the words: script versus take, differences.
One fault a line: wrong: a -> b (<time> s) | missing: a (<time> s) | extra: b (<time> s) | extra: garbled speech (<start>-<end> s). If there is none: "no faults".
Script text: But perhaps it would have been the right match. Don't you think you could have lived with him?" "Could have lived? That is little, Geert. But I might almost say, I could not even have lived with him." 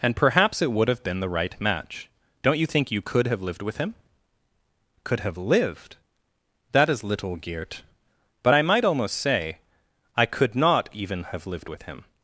wrong: But -> And (0.0 s)